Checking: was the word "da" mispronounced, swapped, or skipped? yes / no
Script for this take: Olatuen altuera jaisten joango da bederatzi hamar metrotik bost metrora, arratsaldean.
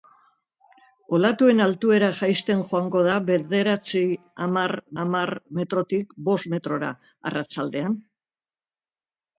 no